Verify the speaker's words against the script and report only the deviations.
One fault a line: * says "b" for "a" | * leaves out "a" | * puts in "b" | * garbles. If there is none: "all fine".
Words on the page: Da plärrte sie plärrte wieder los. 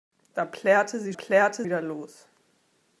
all fine